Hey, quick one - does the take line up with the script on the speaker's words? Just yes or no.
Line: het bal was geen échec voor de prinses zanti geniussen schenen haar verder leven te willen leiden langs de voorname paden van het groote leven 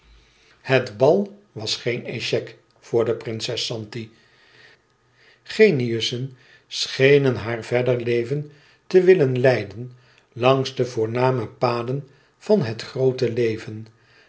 yes